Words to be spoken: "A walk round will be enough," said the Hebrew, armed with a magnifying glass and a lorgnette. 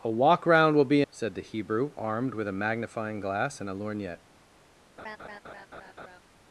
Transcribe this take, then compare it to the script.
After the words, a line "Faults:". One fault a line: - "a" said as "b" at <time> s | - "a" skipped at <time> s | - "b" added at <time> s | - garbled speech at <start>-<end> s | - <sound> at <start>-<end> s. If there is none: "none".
"A walk round will be," said the Hebrew, armed with a magnifying glass and a lorgnette.
Faults:
- "enough" skipped at 1.0 s
- laugh at 5.0-6.2 s